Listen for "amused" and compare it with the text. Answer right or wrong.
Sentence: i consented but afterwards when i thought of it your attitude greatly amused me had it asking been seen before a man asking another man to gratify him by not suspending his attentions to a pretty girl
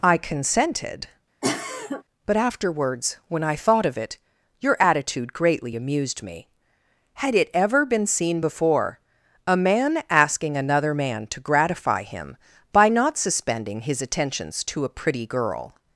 right